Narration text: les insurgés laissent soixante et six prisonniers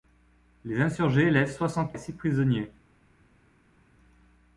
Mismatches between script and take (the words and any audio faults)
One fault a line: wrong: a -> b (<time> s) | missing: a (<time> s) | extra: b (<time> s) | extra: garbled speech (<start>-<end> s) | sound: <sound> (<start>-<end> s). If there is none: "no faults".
no faults